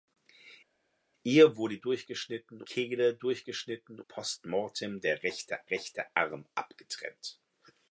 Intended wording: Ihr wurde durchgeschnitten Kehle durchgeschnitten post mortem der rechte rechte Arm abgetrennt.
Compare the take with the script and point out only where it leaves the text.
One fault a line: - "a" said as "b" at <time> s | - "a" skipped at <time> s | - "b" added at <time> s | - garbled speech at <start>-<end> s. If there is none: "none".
none